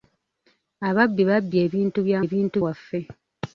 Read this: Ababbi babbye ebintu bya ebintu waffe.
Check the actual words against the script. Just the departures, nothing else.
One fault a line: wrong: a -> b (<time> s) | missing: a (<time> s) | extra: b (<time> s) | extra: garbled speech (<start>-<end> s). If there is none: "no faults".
no faults